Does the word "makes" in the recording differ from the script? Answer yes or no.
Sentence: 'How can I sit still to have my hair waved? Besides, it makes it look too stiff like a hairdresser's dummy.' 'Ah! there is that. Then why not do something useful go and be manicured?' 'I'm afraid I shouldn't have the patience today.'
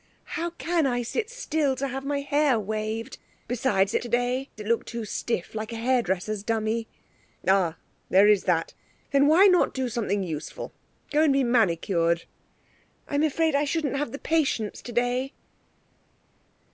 yes